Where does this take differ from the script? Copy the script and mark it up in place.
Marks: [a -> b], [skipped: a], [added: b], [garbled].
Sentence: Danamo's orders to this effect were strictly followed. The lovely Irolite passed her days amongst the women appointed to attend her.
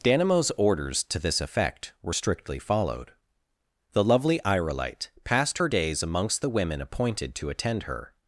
Danamo's orders to this effect were strictly followed. The lovely Irolite passed her days amongst the women appointed to attend her.